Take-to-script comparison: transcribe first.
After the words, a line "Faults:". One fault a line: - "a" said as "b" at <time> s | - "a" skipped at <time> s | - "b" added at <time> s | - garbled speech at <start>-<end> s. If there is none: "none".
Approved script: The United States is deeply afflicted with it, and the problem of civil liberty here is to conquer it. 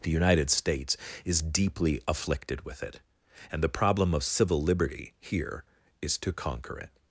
The United States is deeply afflicted with it, and the problem of civil liberty here is to conquer it.
Faults:
none